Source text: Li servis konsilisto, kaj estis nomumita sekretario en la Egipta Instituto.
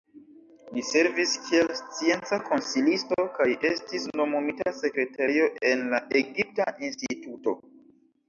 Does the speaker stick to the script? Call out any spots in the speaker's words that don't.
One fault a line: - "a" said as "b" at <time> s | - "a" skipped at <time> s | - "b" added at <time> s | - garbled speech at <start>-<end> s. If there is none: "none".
- "kiel scienca" added at 1.5 s